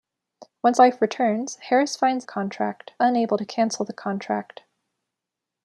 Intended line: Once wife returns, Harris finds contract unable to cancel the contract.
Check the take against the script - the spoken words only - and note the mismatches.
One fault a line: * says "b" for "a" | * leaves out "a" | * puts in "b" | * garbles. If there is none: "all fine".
all fine